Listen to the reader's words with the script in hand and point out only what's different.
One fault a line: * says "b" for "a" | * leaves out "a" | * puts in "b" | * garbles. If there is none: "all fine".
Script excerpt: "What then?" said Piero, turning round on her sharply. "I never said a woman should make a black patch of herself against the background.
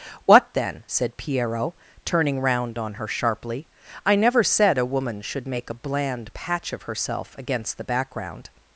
* says "bland" for "black"